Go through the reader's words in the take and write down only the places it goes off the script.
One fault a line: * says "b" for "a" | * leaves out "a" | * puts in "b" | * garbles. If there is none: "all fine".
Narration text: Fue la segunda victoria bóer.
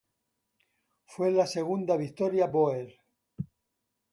all fine